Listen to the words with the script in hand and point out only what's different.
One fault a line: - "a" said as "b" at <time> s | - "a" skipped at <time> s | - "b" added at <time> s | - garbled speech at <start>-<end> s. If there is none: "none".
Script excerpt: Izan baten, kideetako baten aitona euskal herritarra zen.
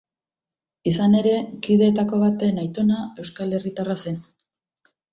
- "baten" said as "ere" at 1.2 s